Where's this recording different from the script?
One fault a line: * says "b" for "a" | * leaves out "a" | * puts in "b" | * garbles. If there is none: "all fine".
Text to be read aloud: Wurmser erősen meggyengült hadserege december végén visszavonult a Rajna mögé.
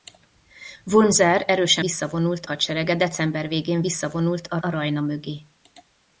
* says "visszavonult" for "meggyengült"
* puts in "a"